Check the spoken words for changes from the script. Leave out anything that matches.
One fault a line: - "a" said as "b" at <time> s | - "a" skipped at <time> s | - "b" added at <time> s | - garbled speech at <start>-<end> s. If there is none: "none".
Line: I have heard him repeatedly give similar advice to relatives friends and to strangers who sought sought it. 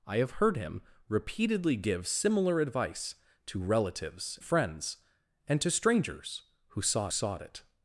none